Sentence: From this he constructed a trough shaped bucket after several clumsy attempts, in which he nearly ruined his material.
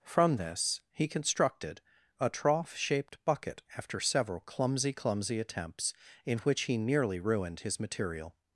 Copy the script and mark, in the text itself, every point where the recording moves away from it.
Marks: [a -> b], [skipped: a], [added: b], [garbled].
From this he constructed a trough shaped bucket after several clumsy [added: clumsy] attempts, in which he nearly ruined his material.